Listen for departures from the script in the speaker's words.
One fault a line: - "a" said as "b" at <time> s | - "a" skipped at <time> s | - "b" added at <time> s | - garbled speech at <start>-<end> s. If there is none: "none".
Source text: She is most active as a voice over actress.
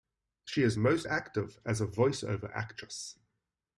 none